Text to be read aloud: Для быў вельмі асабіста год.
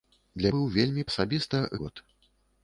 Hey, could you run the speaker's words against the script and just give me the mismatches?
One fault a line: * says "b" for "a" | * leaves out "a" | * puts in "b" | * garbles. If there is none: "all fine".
all fine